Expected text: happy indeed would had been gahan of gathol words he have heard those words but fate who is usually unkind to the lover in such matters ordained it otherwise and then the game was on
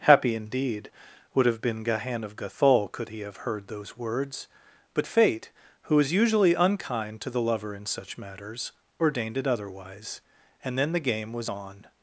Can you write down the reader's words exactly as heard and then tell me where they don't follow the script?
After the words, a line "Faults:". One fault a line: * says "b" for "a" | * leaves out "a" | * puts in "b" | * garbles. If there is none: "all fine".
happy indeed would have been gahan of gathol could he have heard those words but fate who is usually unkind to the lover in such matters ordained it otherwise and then the game was on
Faults:
* says "have" for "had"
* says "could" for "words"